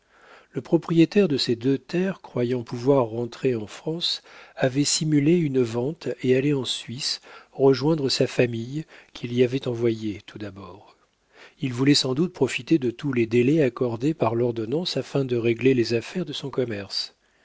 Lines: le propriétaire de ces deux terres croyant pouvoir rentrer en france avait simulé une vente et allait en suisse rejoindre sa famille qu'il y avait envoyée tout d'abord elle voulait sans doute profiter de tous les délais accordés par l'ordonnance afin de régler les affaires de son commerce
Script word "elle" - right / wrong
wrong